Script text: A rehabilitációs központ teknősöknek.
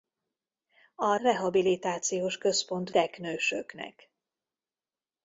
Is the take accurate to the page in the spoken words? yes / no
yes